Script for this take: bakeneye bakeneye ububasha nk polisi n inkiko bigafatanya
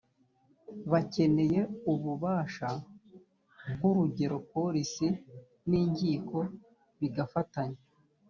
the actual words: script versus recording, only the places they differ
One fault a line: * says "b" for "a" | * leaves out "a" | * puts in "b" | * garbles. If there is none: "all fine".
* leaves out "bakeneye"
* puts in "urugero"